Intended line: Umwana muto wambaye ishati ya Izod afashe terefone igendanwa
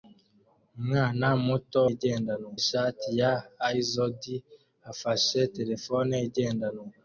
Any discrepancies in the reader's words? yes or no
yes